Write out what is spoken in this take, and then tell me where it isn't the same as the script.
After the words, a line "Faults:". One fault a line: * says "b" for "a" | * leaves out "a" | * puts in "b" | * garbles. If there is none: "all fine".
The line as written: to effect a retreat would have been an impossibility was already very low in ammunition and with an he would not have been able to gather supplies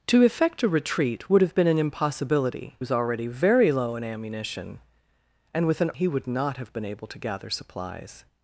to effect a retreat would have been an impossibility was already very low in ammunition and with an he would not have been able to gather supplies
Faults:
all fine